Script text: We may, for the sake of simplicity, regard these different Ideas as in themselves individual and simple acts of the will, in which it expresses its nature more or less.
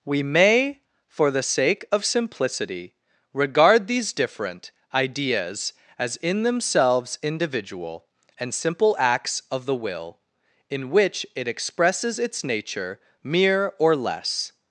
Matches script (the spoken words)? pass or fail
fail